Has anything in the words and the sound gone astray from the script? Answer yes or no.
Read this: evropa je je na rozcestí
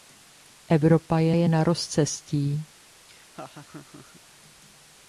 yes